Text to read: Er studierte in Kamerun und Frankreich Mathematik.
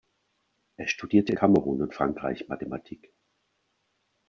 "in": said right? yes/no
no